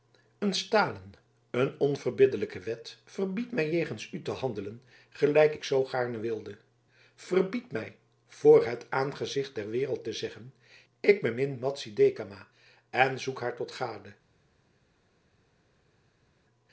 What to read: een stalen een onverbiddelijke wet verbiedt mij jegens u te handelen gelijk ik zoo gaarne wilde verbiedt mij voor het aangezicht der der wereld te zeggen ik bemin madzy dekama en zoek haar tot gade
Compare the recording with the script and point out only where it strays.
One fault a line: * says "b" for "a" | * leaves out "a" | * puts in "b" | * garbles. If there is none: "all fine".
* leaves out "der"